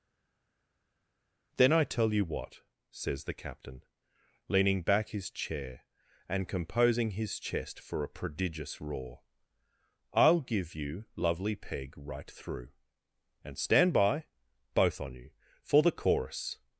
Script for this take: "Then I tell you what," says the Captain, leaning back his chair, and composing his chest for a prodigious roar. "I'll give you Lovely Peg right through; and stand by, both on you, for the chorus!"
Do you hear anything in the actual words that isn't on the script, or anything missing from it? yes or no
no